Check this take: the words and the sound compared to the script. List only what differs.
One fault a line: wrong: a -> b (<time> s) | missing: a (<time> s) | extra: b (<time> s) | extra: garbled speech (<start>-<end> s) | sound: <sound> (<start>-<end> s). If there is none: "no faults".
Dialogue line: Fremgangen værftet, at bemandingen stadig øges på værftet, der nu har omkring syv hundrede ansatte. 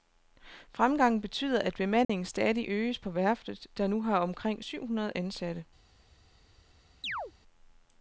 wrong: værftet -> betyder (1.2 s)
sound: dropout (2.0-2.1 s)
sound: chirp (7.0-7.3 s)